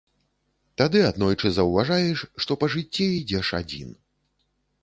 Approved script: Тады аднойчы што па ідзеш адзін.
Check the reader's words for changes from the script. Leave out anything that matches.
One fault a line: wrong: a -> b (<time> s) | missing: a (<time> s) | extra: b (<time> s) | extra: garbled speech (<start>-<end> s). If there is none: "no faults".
extra: заўважаеш (1.6 s)
extra: жыцці (2.8 s)